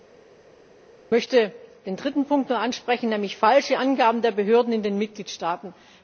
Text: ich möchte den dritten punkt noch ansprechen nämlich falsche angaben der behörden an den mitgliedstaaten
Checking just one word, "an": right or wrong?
wrong